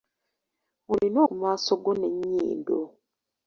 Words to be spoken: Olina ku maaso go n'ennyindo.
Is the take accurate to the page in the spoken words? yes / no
yes